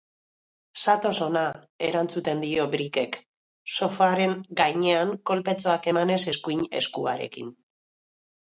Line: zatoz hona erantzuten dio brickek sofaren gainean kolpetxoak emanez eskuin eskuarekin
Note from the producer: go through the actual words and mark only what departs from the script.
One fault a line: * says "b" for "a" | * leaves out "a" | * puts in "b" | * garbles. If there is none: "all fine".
all fine